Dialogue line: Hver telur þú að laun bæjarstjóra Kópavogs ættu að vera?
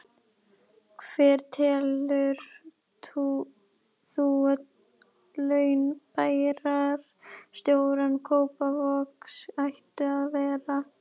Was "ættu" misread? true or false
false